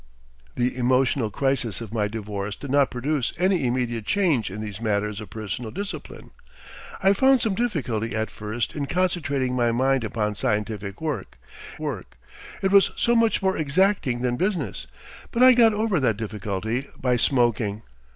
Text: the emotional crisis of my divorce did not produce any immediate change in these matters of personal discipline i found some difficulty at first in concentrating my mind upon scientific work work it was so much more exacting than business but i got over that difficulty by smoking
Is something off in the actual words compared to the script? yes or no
no